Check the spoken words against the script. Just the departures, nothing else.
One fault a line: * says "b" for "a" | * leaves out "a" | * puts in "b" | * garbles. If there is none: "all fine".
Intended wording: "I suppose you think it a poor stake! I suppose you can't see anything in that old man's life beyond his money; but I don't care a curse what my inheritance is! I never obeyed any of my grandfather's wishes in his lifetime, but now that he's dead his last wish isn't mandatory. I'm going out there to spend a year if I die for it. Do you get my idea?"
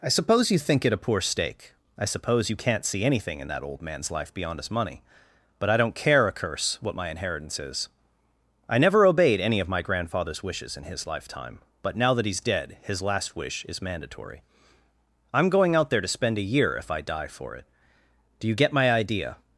* says "is" for "isn't"